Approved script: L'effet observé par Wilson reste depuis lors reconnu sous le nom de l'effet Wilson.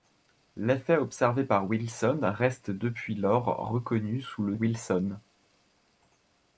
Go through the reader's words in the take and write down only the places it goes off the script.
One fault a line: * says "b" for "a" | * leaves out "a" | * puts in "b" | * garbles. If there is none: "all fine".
* leaves out "nom de l'effet"